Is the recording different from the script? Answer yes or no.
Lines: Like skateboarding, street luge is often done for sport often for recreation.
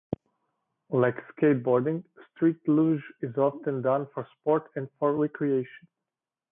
yes